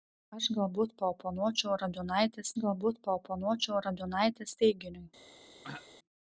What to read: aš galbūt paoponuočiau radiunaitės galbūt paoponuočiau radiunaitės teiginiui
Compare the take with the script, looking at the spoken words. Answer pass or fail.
pass